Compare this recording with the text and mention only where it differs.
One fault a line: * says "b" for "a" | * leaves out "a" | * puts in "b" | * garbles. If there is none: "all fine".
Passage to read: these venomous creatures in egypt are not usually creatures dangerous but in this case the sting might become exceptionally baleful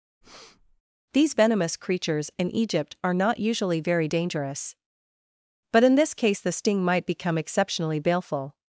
* says "very" for "creatures"